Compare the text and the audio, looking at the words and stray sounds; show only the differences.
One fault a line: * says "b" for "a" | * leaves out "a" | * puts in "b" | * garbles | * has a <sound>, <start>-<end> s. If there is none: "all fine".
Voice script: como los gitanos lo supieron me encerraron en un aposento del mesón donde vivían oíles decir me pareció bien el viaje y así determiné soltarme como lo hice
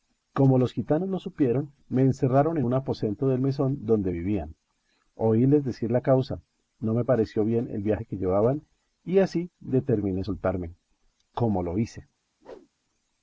* puts in "la causa no"
* puts in "que llevaban"
* has a whoosh, 12.4-12.7 s